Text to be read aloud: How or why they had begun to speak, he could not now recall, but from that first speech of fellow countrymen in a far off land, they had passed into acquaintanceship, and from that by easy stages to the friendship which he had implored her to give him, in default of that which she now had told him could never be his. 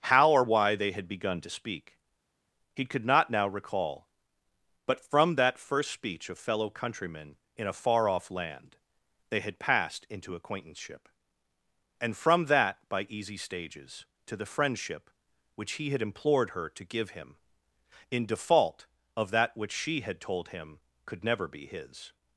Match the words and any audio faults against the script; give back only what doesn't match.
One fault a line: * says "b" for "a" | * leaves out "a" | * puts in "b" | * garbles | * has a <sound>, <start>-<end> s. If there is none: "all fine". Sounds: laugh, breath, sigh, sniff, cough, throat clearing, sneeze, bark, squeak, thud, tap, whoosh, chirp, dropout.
* leaves out "now"